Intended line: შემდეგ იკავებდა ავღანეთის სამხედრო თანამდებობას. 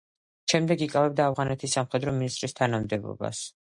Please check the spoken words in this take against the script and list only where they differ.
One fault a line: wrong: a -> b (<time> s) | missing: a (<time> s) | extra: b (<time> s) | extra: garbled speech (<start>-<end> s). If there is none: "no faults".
extra: მინისტრის (2.2 s)